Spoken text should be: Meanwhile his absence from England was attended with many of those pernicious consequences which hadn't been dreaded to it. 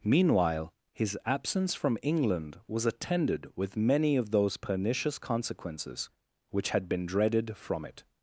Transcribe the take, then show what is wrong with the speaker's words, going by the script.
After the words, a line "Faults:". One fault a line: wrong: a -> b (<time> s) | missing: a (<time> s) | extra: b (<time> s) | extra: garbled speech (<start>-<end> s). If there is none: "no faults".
Meanwhile his absence from England was attended with many of those pernicious consequences which had been dreaded from it.
Faults:
wrong: hadn't -> had (6.7 s)
wrong: to -> from (7.5 s)